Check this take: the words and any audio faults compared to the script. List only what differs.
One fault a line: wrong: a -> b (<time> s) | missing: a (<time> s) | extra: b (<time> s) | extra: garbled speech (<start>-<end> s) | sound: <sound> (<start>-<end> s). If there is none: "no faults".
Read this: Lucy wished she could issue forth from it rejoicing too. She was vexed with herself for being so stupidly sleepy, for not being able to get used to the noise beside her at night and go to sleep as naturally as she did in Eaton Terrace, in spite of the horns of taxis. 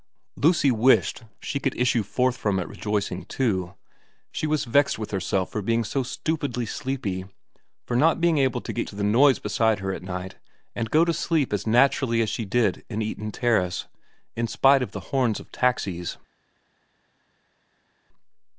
missing: used (8.9 s)